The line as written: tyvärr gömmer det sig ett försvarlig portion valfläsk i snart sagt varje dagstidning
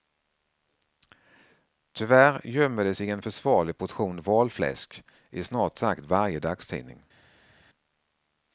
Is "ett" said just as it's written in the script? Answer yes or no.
no